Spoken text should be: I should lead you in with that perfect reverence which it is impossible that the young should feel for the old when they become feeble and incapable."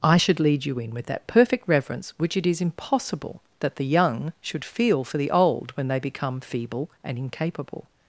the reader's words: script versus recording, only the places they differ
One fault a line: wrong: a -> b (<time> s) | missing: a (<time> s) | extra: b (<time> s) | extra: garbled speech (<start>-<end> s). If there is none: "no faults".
no faults